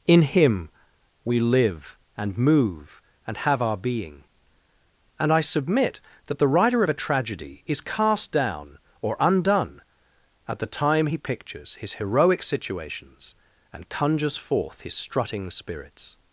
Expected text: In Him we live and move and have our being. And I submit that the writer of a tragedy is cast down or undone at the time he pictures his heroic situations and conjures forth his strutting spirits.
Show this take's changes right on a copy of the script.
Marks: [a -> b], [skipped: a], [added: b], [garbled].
In Him we live and move and have our being. And I submit that the writer of a tragedy is cast down or undone at the time he pictures his heroic situations and conjures forth his strutting spirits.